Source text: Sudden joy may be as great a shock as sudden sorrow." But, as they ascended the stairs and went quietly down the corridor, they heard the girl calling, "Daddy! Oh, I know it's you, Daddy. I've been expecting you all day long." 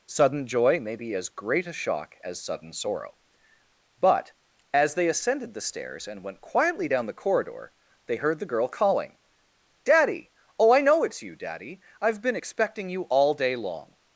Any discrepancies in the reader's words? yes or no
no